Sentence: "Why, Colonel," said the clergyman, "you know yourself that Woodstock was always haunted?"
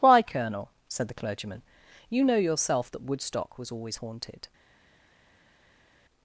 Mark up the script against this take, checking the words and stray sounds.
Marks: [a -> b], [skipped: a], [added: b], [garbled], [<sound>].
"Why, Colonel," said the clergyman, "you know yourself that Woodstock was always haunted?"